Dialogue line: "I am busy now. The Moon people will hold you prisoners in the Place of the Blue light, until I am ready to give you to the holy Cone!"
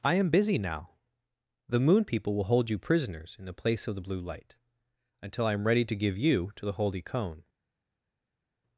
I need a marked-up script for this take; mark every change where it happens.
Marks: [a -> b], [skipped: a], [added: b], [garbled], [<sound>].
"I am busy now. The Moon people will hold you prisoners in the Place of the Blue light, until I am ready to give you to the holy Cone!"